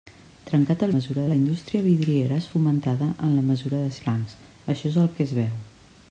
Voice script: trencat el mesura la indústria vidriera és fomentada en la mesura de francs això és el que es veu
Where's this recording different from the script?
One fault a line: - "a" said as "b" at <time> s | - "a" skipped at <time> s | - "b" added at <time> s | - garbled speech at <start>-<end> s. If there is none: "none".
none